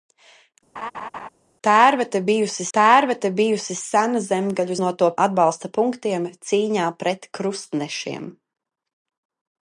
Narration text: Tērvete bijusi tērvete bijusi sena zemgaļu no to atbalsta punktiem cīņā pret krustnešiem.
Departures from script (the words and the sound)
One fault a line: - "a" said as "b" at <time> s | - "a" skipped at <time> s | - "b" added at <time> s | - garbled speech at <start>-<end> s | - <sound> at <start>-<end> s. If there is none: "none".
- laugh at 0.8-1.3 s